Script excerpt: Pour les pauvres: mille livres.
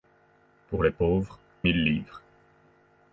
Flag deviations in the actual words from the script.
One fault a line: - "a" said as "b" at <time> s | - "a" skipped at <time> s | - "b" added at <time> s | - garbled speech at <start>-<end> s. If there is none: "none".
none